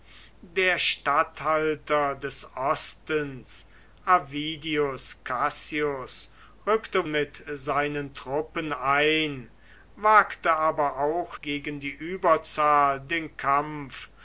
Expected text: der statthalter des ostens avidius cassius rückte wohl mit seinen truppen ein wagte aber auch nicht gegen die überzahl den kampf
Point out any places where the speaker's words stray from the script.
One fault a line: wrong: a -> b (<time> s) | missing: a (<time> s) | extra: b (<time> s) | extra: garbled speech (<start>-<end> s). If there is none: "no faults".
missing: wohl (7.1 s)
missing: nicht (11.4 s)